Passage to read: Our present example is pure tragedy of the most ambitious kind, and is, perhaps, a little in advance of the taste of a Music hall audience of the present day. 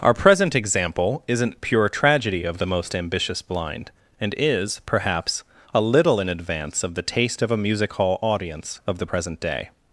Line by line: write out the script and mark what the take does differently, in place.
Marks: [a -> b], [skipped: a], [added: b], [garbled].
Our present example [is -> isn't] pure tragedy of the most ambitious [kind, -> blind] and is, perhaps, a little in advance of the taste of a Music hall audience of the present day.